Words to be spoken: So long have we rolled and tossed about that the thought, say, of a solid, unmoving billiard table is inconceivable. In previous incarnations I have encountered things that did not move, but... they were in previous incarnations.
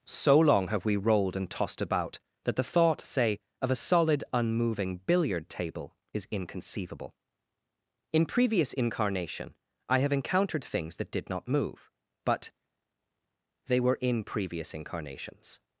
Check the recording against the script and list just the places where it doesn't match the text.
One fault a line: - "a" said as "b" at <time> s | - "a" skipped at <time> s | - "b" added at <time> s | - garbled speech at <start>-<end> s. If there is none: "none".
- "incarnations" said as "incarnation" at 8.7 s